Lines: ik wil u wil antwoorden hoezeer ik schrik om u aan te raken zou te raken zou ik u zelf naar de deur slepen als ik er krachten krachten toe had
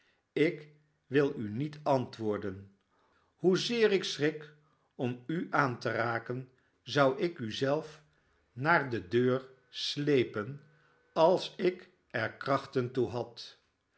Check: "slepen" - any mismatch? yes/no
no